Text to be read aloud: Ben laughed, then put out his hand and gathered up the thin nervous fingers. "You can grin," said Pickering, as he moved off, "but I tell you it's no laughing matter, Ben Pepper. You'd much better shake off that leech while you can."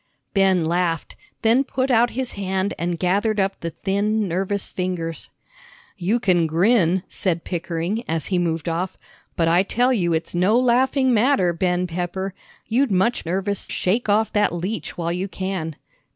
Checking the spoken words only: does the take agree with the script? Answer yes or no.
no